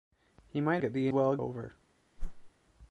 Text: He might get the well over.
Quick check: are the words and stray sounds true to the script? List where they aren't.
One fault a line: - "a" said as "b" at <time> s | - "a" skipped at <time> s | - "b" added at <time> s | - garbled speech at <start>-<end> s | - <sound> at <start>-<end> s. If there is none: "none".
- whoosh at 2.2-2.5 s